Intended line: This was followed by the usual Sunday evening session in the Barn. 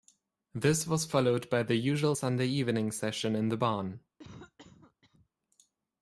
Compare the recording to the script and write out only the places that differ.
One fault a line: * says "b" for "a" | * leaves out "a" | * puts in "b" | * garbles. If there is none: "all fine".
all fine